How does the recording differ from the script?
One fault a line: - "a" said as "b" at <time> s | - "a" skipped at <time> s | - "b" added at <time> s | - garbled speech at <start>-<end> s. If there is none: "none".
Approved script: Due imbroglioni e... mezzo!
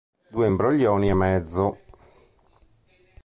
none